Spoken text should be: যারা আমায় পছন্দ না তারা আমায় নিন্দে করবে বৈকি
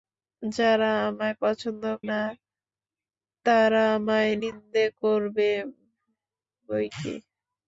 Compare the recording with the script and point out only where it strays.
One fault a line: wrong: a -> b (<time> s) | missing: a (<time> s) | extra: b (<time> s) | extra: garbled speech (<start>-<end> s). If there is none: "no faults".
no faults